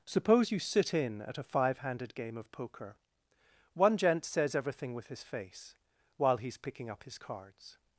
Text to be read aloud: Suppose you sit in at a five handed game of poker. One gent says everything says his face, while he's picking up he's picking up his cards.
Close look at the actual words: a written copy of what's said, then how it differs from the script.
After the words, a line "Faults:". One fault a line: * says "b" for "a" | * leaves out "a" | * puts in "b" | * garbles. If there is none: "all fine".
Suppose you sit in at a five handed game of poker. One gent says everything with his face, while he's picking up his cards.
Faults:
* says "with" for "says"
* leaves out "he's picking up"